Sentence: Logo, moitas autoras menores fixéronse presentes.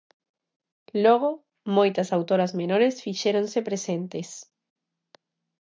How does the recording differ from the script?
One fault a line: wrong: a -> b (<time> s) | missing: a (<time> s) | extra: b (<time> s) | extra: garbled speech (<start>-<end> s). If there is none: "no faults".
no faults